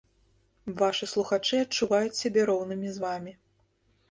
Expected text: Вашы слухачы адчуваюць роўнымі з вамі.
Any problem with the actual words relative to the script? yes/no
yes